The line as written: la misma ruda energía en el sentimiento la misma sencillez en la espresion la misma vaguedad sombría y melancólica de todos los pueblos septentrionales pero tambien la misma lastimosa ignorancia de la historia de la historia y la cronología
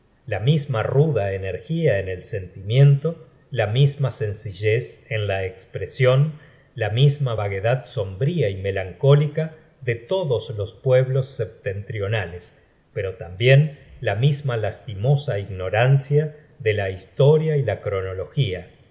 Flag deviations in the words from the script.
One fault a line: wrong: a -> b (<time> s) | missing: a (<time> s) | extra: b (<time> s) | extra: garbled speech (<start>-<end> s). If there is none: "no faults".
missing: de la historia (17.6 s)